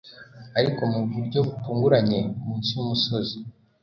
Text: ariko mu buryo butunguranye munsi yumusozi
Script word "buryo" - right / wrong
right